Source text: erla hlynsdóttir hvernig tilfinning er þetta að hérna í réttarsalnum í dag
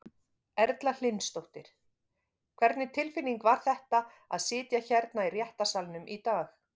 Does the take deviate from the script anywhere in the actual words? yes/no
yes